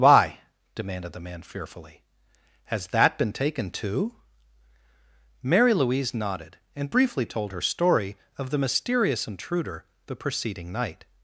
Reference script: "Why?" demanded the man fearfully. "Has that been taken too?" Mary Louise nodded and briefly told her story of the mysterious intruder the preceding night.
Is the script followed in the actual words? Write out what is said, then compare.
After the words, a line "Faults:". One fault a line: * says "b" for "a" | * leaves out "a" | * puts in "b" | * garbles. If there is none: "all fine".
"Why?" demanded the man fearfully. "Has that been taken too?" Mary Louise nodded and briefly told her story of the mysterious intruder the preceding night.
Faults:
all fine